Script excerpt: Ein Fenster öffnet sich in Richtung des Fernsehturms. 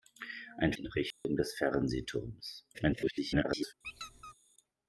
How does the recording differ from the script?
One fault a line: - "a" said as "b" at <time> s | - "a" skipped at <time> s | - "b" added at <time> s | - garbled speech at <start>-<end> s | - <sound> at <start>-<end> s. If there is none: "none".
- "Fenster öffnet sich" skipped at 0.7 s
- dropout at 1.1-1.2 s
- garbled speech at 2.7-3.7 s
- squeak at 3.8-4.3 s